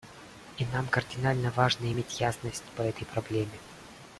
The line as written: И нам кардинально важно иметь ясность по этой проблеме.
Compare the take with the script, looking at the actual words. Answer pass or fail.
pass